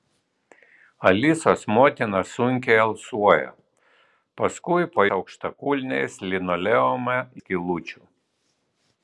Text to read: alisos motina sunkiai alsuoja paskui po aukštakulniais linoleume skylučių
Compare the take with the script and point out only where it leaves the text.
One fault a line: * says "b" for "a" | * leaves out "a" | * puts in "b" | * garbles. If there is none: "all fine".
all fine